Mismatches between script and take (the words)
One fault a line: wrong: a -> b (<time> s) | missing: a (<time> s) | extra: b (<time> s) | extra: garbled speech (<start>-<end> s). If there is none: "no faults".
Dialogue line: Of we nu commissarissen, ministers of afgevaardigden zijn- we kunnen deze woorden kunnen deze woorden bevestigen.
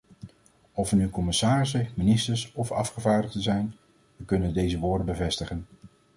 missing: kunnen deze woorden (5.1 s)